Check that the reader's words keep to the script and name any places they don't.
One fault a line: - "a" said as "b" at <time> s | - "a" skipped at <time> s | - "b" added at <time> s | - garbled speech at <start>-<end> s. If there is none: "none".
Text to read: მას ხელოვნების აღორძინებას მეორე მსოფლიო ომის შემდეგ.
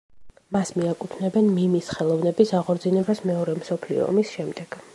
- "მიაკუთვნებენ მიმის" added at 0.8 s